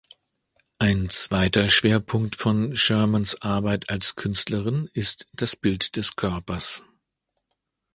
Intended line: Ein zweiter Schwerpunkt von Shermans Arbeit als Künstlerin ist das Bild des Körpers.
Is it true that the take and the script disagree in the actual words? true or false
false